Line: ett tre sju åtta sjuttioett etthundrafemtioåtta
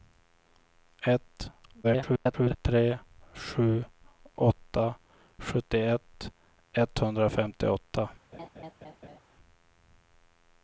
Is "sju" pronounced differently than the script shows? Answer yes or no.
no